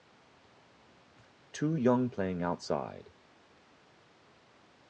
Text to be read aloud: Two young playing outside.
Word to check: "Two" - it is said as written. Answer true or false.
true